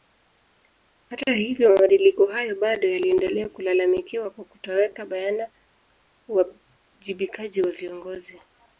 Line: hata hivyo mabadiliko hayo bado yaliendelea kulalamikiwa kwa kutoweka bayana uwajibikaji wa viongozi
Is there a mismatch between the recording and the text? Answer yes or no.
no